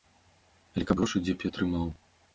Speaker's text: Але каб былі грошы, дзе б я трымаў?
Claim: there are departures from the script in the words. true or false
true